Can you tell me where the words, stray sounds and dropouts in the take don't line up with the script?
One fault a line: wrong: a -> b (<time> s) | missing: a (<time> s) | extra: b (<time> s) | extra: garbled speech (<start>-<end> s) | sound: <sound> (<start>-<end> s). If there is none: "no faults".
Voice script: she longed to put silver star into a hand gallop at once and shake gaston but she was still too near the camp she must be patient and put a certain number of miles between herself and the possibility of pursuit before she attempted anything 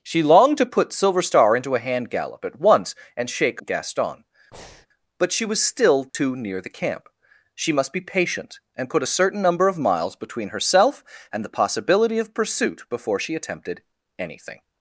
sound: breath (4.5-4.9 s)
sound: dropout (6.1-6.1 s)